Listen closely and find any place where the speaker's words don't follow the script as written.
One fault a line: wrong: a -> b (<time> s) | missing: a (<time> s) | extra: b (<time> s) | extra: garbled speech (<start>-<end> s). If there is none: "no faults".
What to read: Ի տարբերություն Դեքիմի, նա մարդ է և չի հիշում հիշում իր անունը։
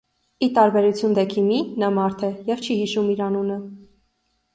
missing: հիշում (3.1 s)